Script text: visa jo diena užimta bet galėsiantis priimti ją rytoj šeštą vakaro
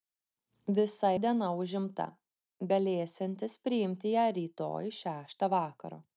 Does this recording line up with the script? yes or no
no